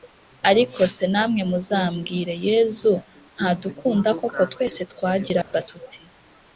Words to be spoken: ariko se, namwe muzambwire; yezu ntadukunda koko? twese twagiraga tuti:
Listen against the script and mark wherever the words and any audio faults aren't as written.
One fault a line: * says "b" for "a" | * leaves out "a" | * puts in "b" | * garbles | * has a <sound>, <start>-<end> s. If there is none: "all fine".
* has a dropout, 5.4-5.5 s